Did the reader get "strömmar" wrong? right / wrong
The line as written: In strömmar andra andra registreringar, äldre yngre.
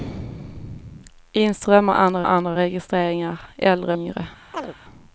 right